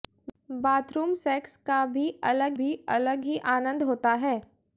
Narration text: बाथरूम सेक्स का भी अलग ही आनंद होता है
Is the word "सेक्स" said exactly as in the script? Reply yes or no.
yes